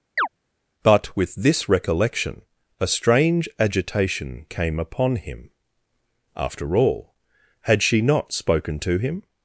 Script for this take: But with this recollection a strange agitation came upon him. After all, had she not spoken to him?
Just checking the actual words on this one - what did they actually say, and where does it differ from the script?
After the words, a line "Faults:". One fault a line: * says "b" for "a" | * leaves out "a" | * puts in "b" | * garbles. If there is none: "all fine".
But with this recollection a strange agitation came upon him. After all, had she not spoken to him?
Faults:
all fine